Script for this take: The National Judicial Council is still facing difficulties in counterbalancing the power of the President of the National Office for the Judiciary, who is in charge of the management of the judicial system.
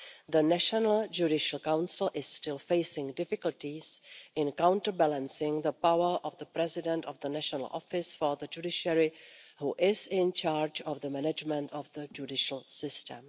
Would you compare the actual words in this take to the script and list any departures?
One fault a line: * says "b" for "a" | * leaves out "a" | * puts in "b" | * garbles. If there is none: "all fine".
all fine